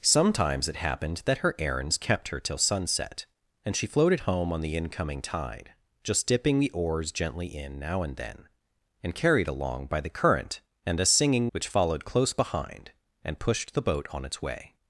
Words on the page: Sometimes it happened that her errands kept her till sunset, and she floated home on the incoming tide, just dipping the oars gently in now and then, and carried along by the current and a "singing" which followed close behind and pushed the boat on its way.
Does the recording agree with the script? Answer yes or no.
yes